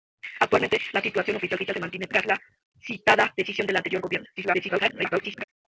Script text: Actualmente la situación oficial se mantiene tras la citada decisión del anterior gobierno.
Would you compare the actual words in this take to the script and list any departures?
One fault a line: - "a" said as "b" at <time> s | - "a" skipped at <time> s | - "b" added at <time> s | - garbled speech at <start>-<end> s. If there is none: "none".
- "oficial" added at 1.5 s
- garbled speech at 4.4-5.4 s